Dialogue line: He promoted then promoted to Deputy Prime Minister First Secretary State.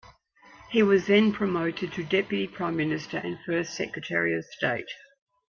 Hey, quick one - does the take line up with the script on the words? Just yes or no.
no